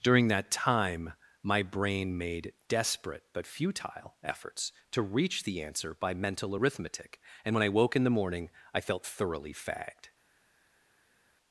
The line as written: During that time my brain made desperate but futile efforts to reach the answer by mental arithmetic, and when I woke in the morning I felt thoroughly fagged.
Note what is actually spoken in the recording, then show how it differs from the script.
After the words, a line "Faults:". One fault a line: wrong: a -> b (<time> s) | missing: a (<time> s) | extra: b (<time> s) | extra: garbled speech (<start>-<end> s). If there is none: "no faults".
During that time my brain made desperate but futile efforts to reach the answer by mental arithmetic, and when I woke in the morning I felt thoroughly fagged.
Faults:
no faults